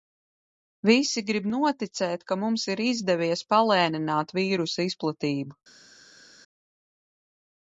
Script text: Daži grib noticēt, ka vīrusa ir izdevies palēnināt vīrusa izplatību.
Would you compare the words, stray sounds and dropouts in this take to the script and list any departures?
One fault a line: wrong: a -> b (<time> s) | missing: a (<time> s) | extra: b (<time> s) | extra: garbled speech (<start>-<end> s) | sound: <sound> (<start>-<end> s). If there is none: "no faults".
wrong: Daži -> Visi (0.9 s)
wrong: vīrusa -> mums (2.4 s)